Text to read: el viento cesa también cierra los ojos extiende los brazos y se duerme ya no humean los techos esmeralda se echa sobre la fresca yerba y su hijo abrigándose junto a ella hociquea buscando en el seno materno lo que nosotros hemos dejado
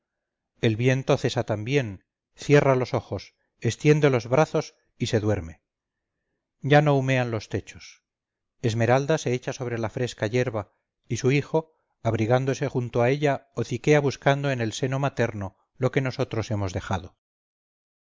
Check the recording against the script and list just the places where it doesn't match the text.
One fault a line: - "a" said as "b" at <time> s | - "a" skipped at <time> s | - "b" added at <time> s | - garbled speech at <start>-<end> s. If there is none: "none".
none